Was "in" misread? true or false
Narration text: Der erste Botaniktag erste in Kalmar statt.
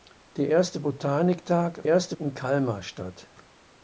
false